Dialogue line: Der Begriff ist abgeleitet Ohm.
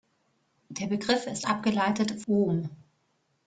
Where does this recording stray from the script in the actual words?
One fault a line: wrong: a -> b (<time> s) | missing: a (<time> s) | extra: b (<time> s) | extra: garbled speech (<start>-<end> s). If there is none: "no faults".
no faults